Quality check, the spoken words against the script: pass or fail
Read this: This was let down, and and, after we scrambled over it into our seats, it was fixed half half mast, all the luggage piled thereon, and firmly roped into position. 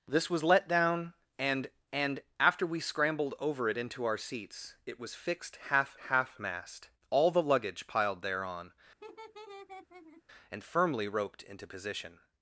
pass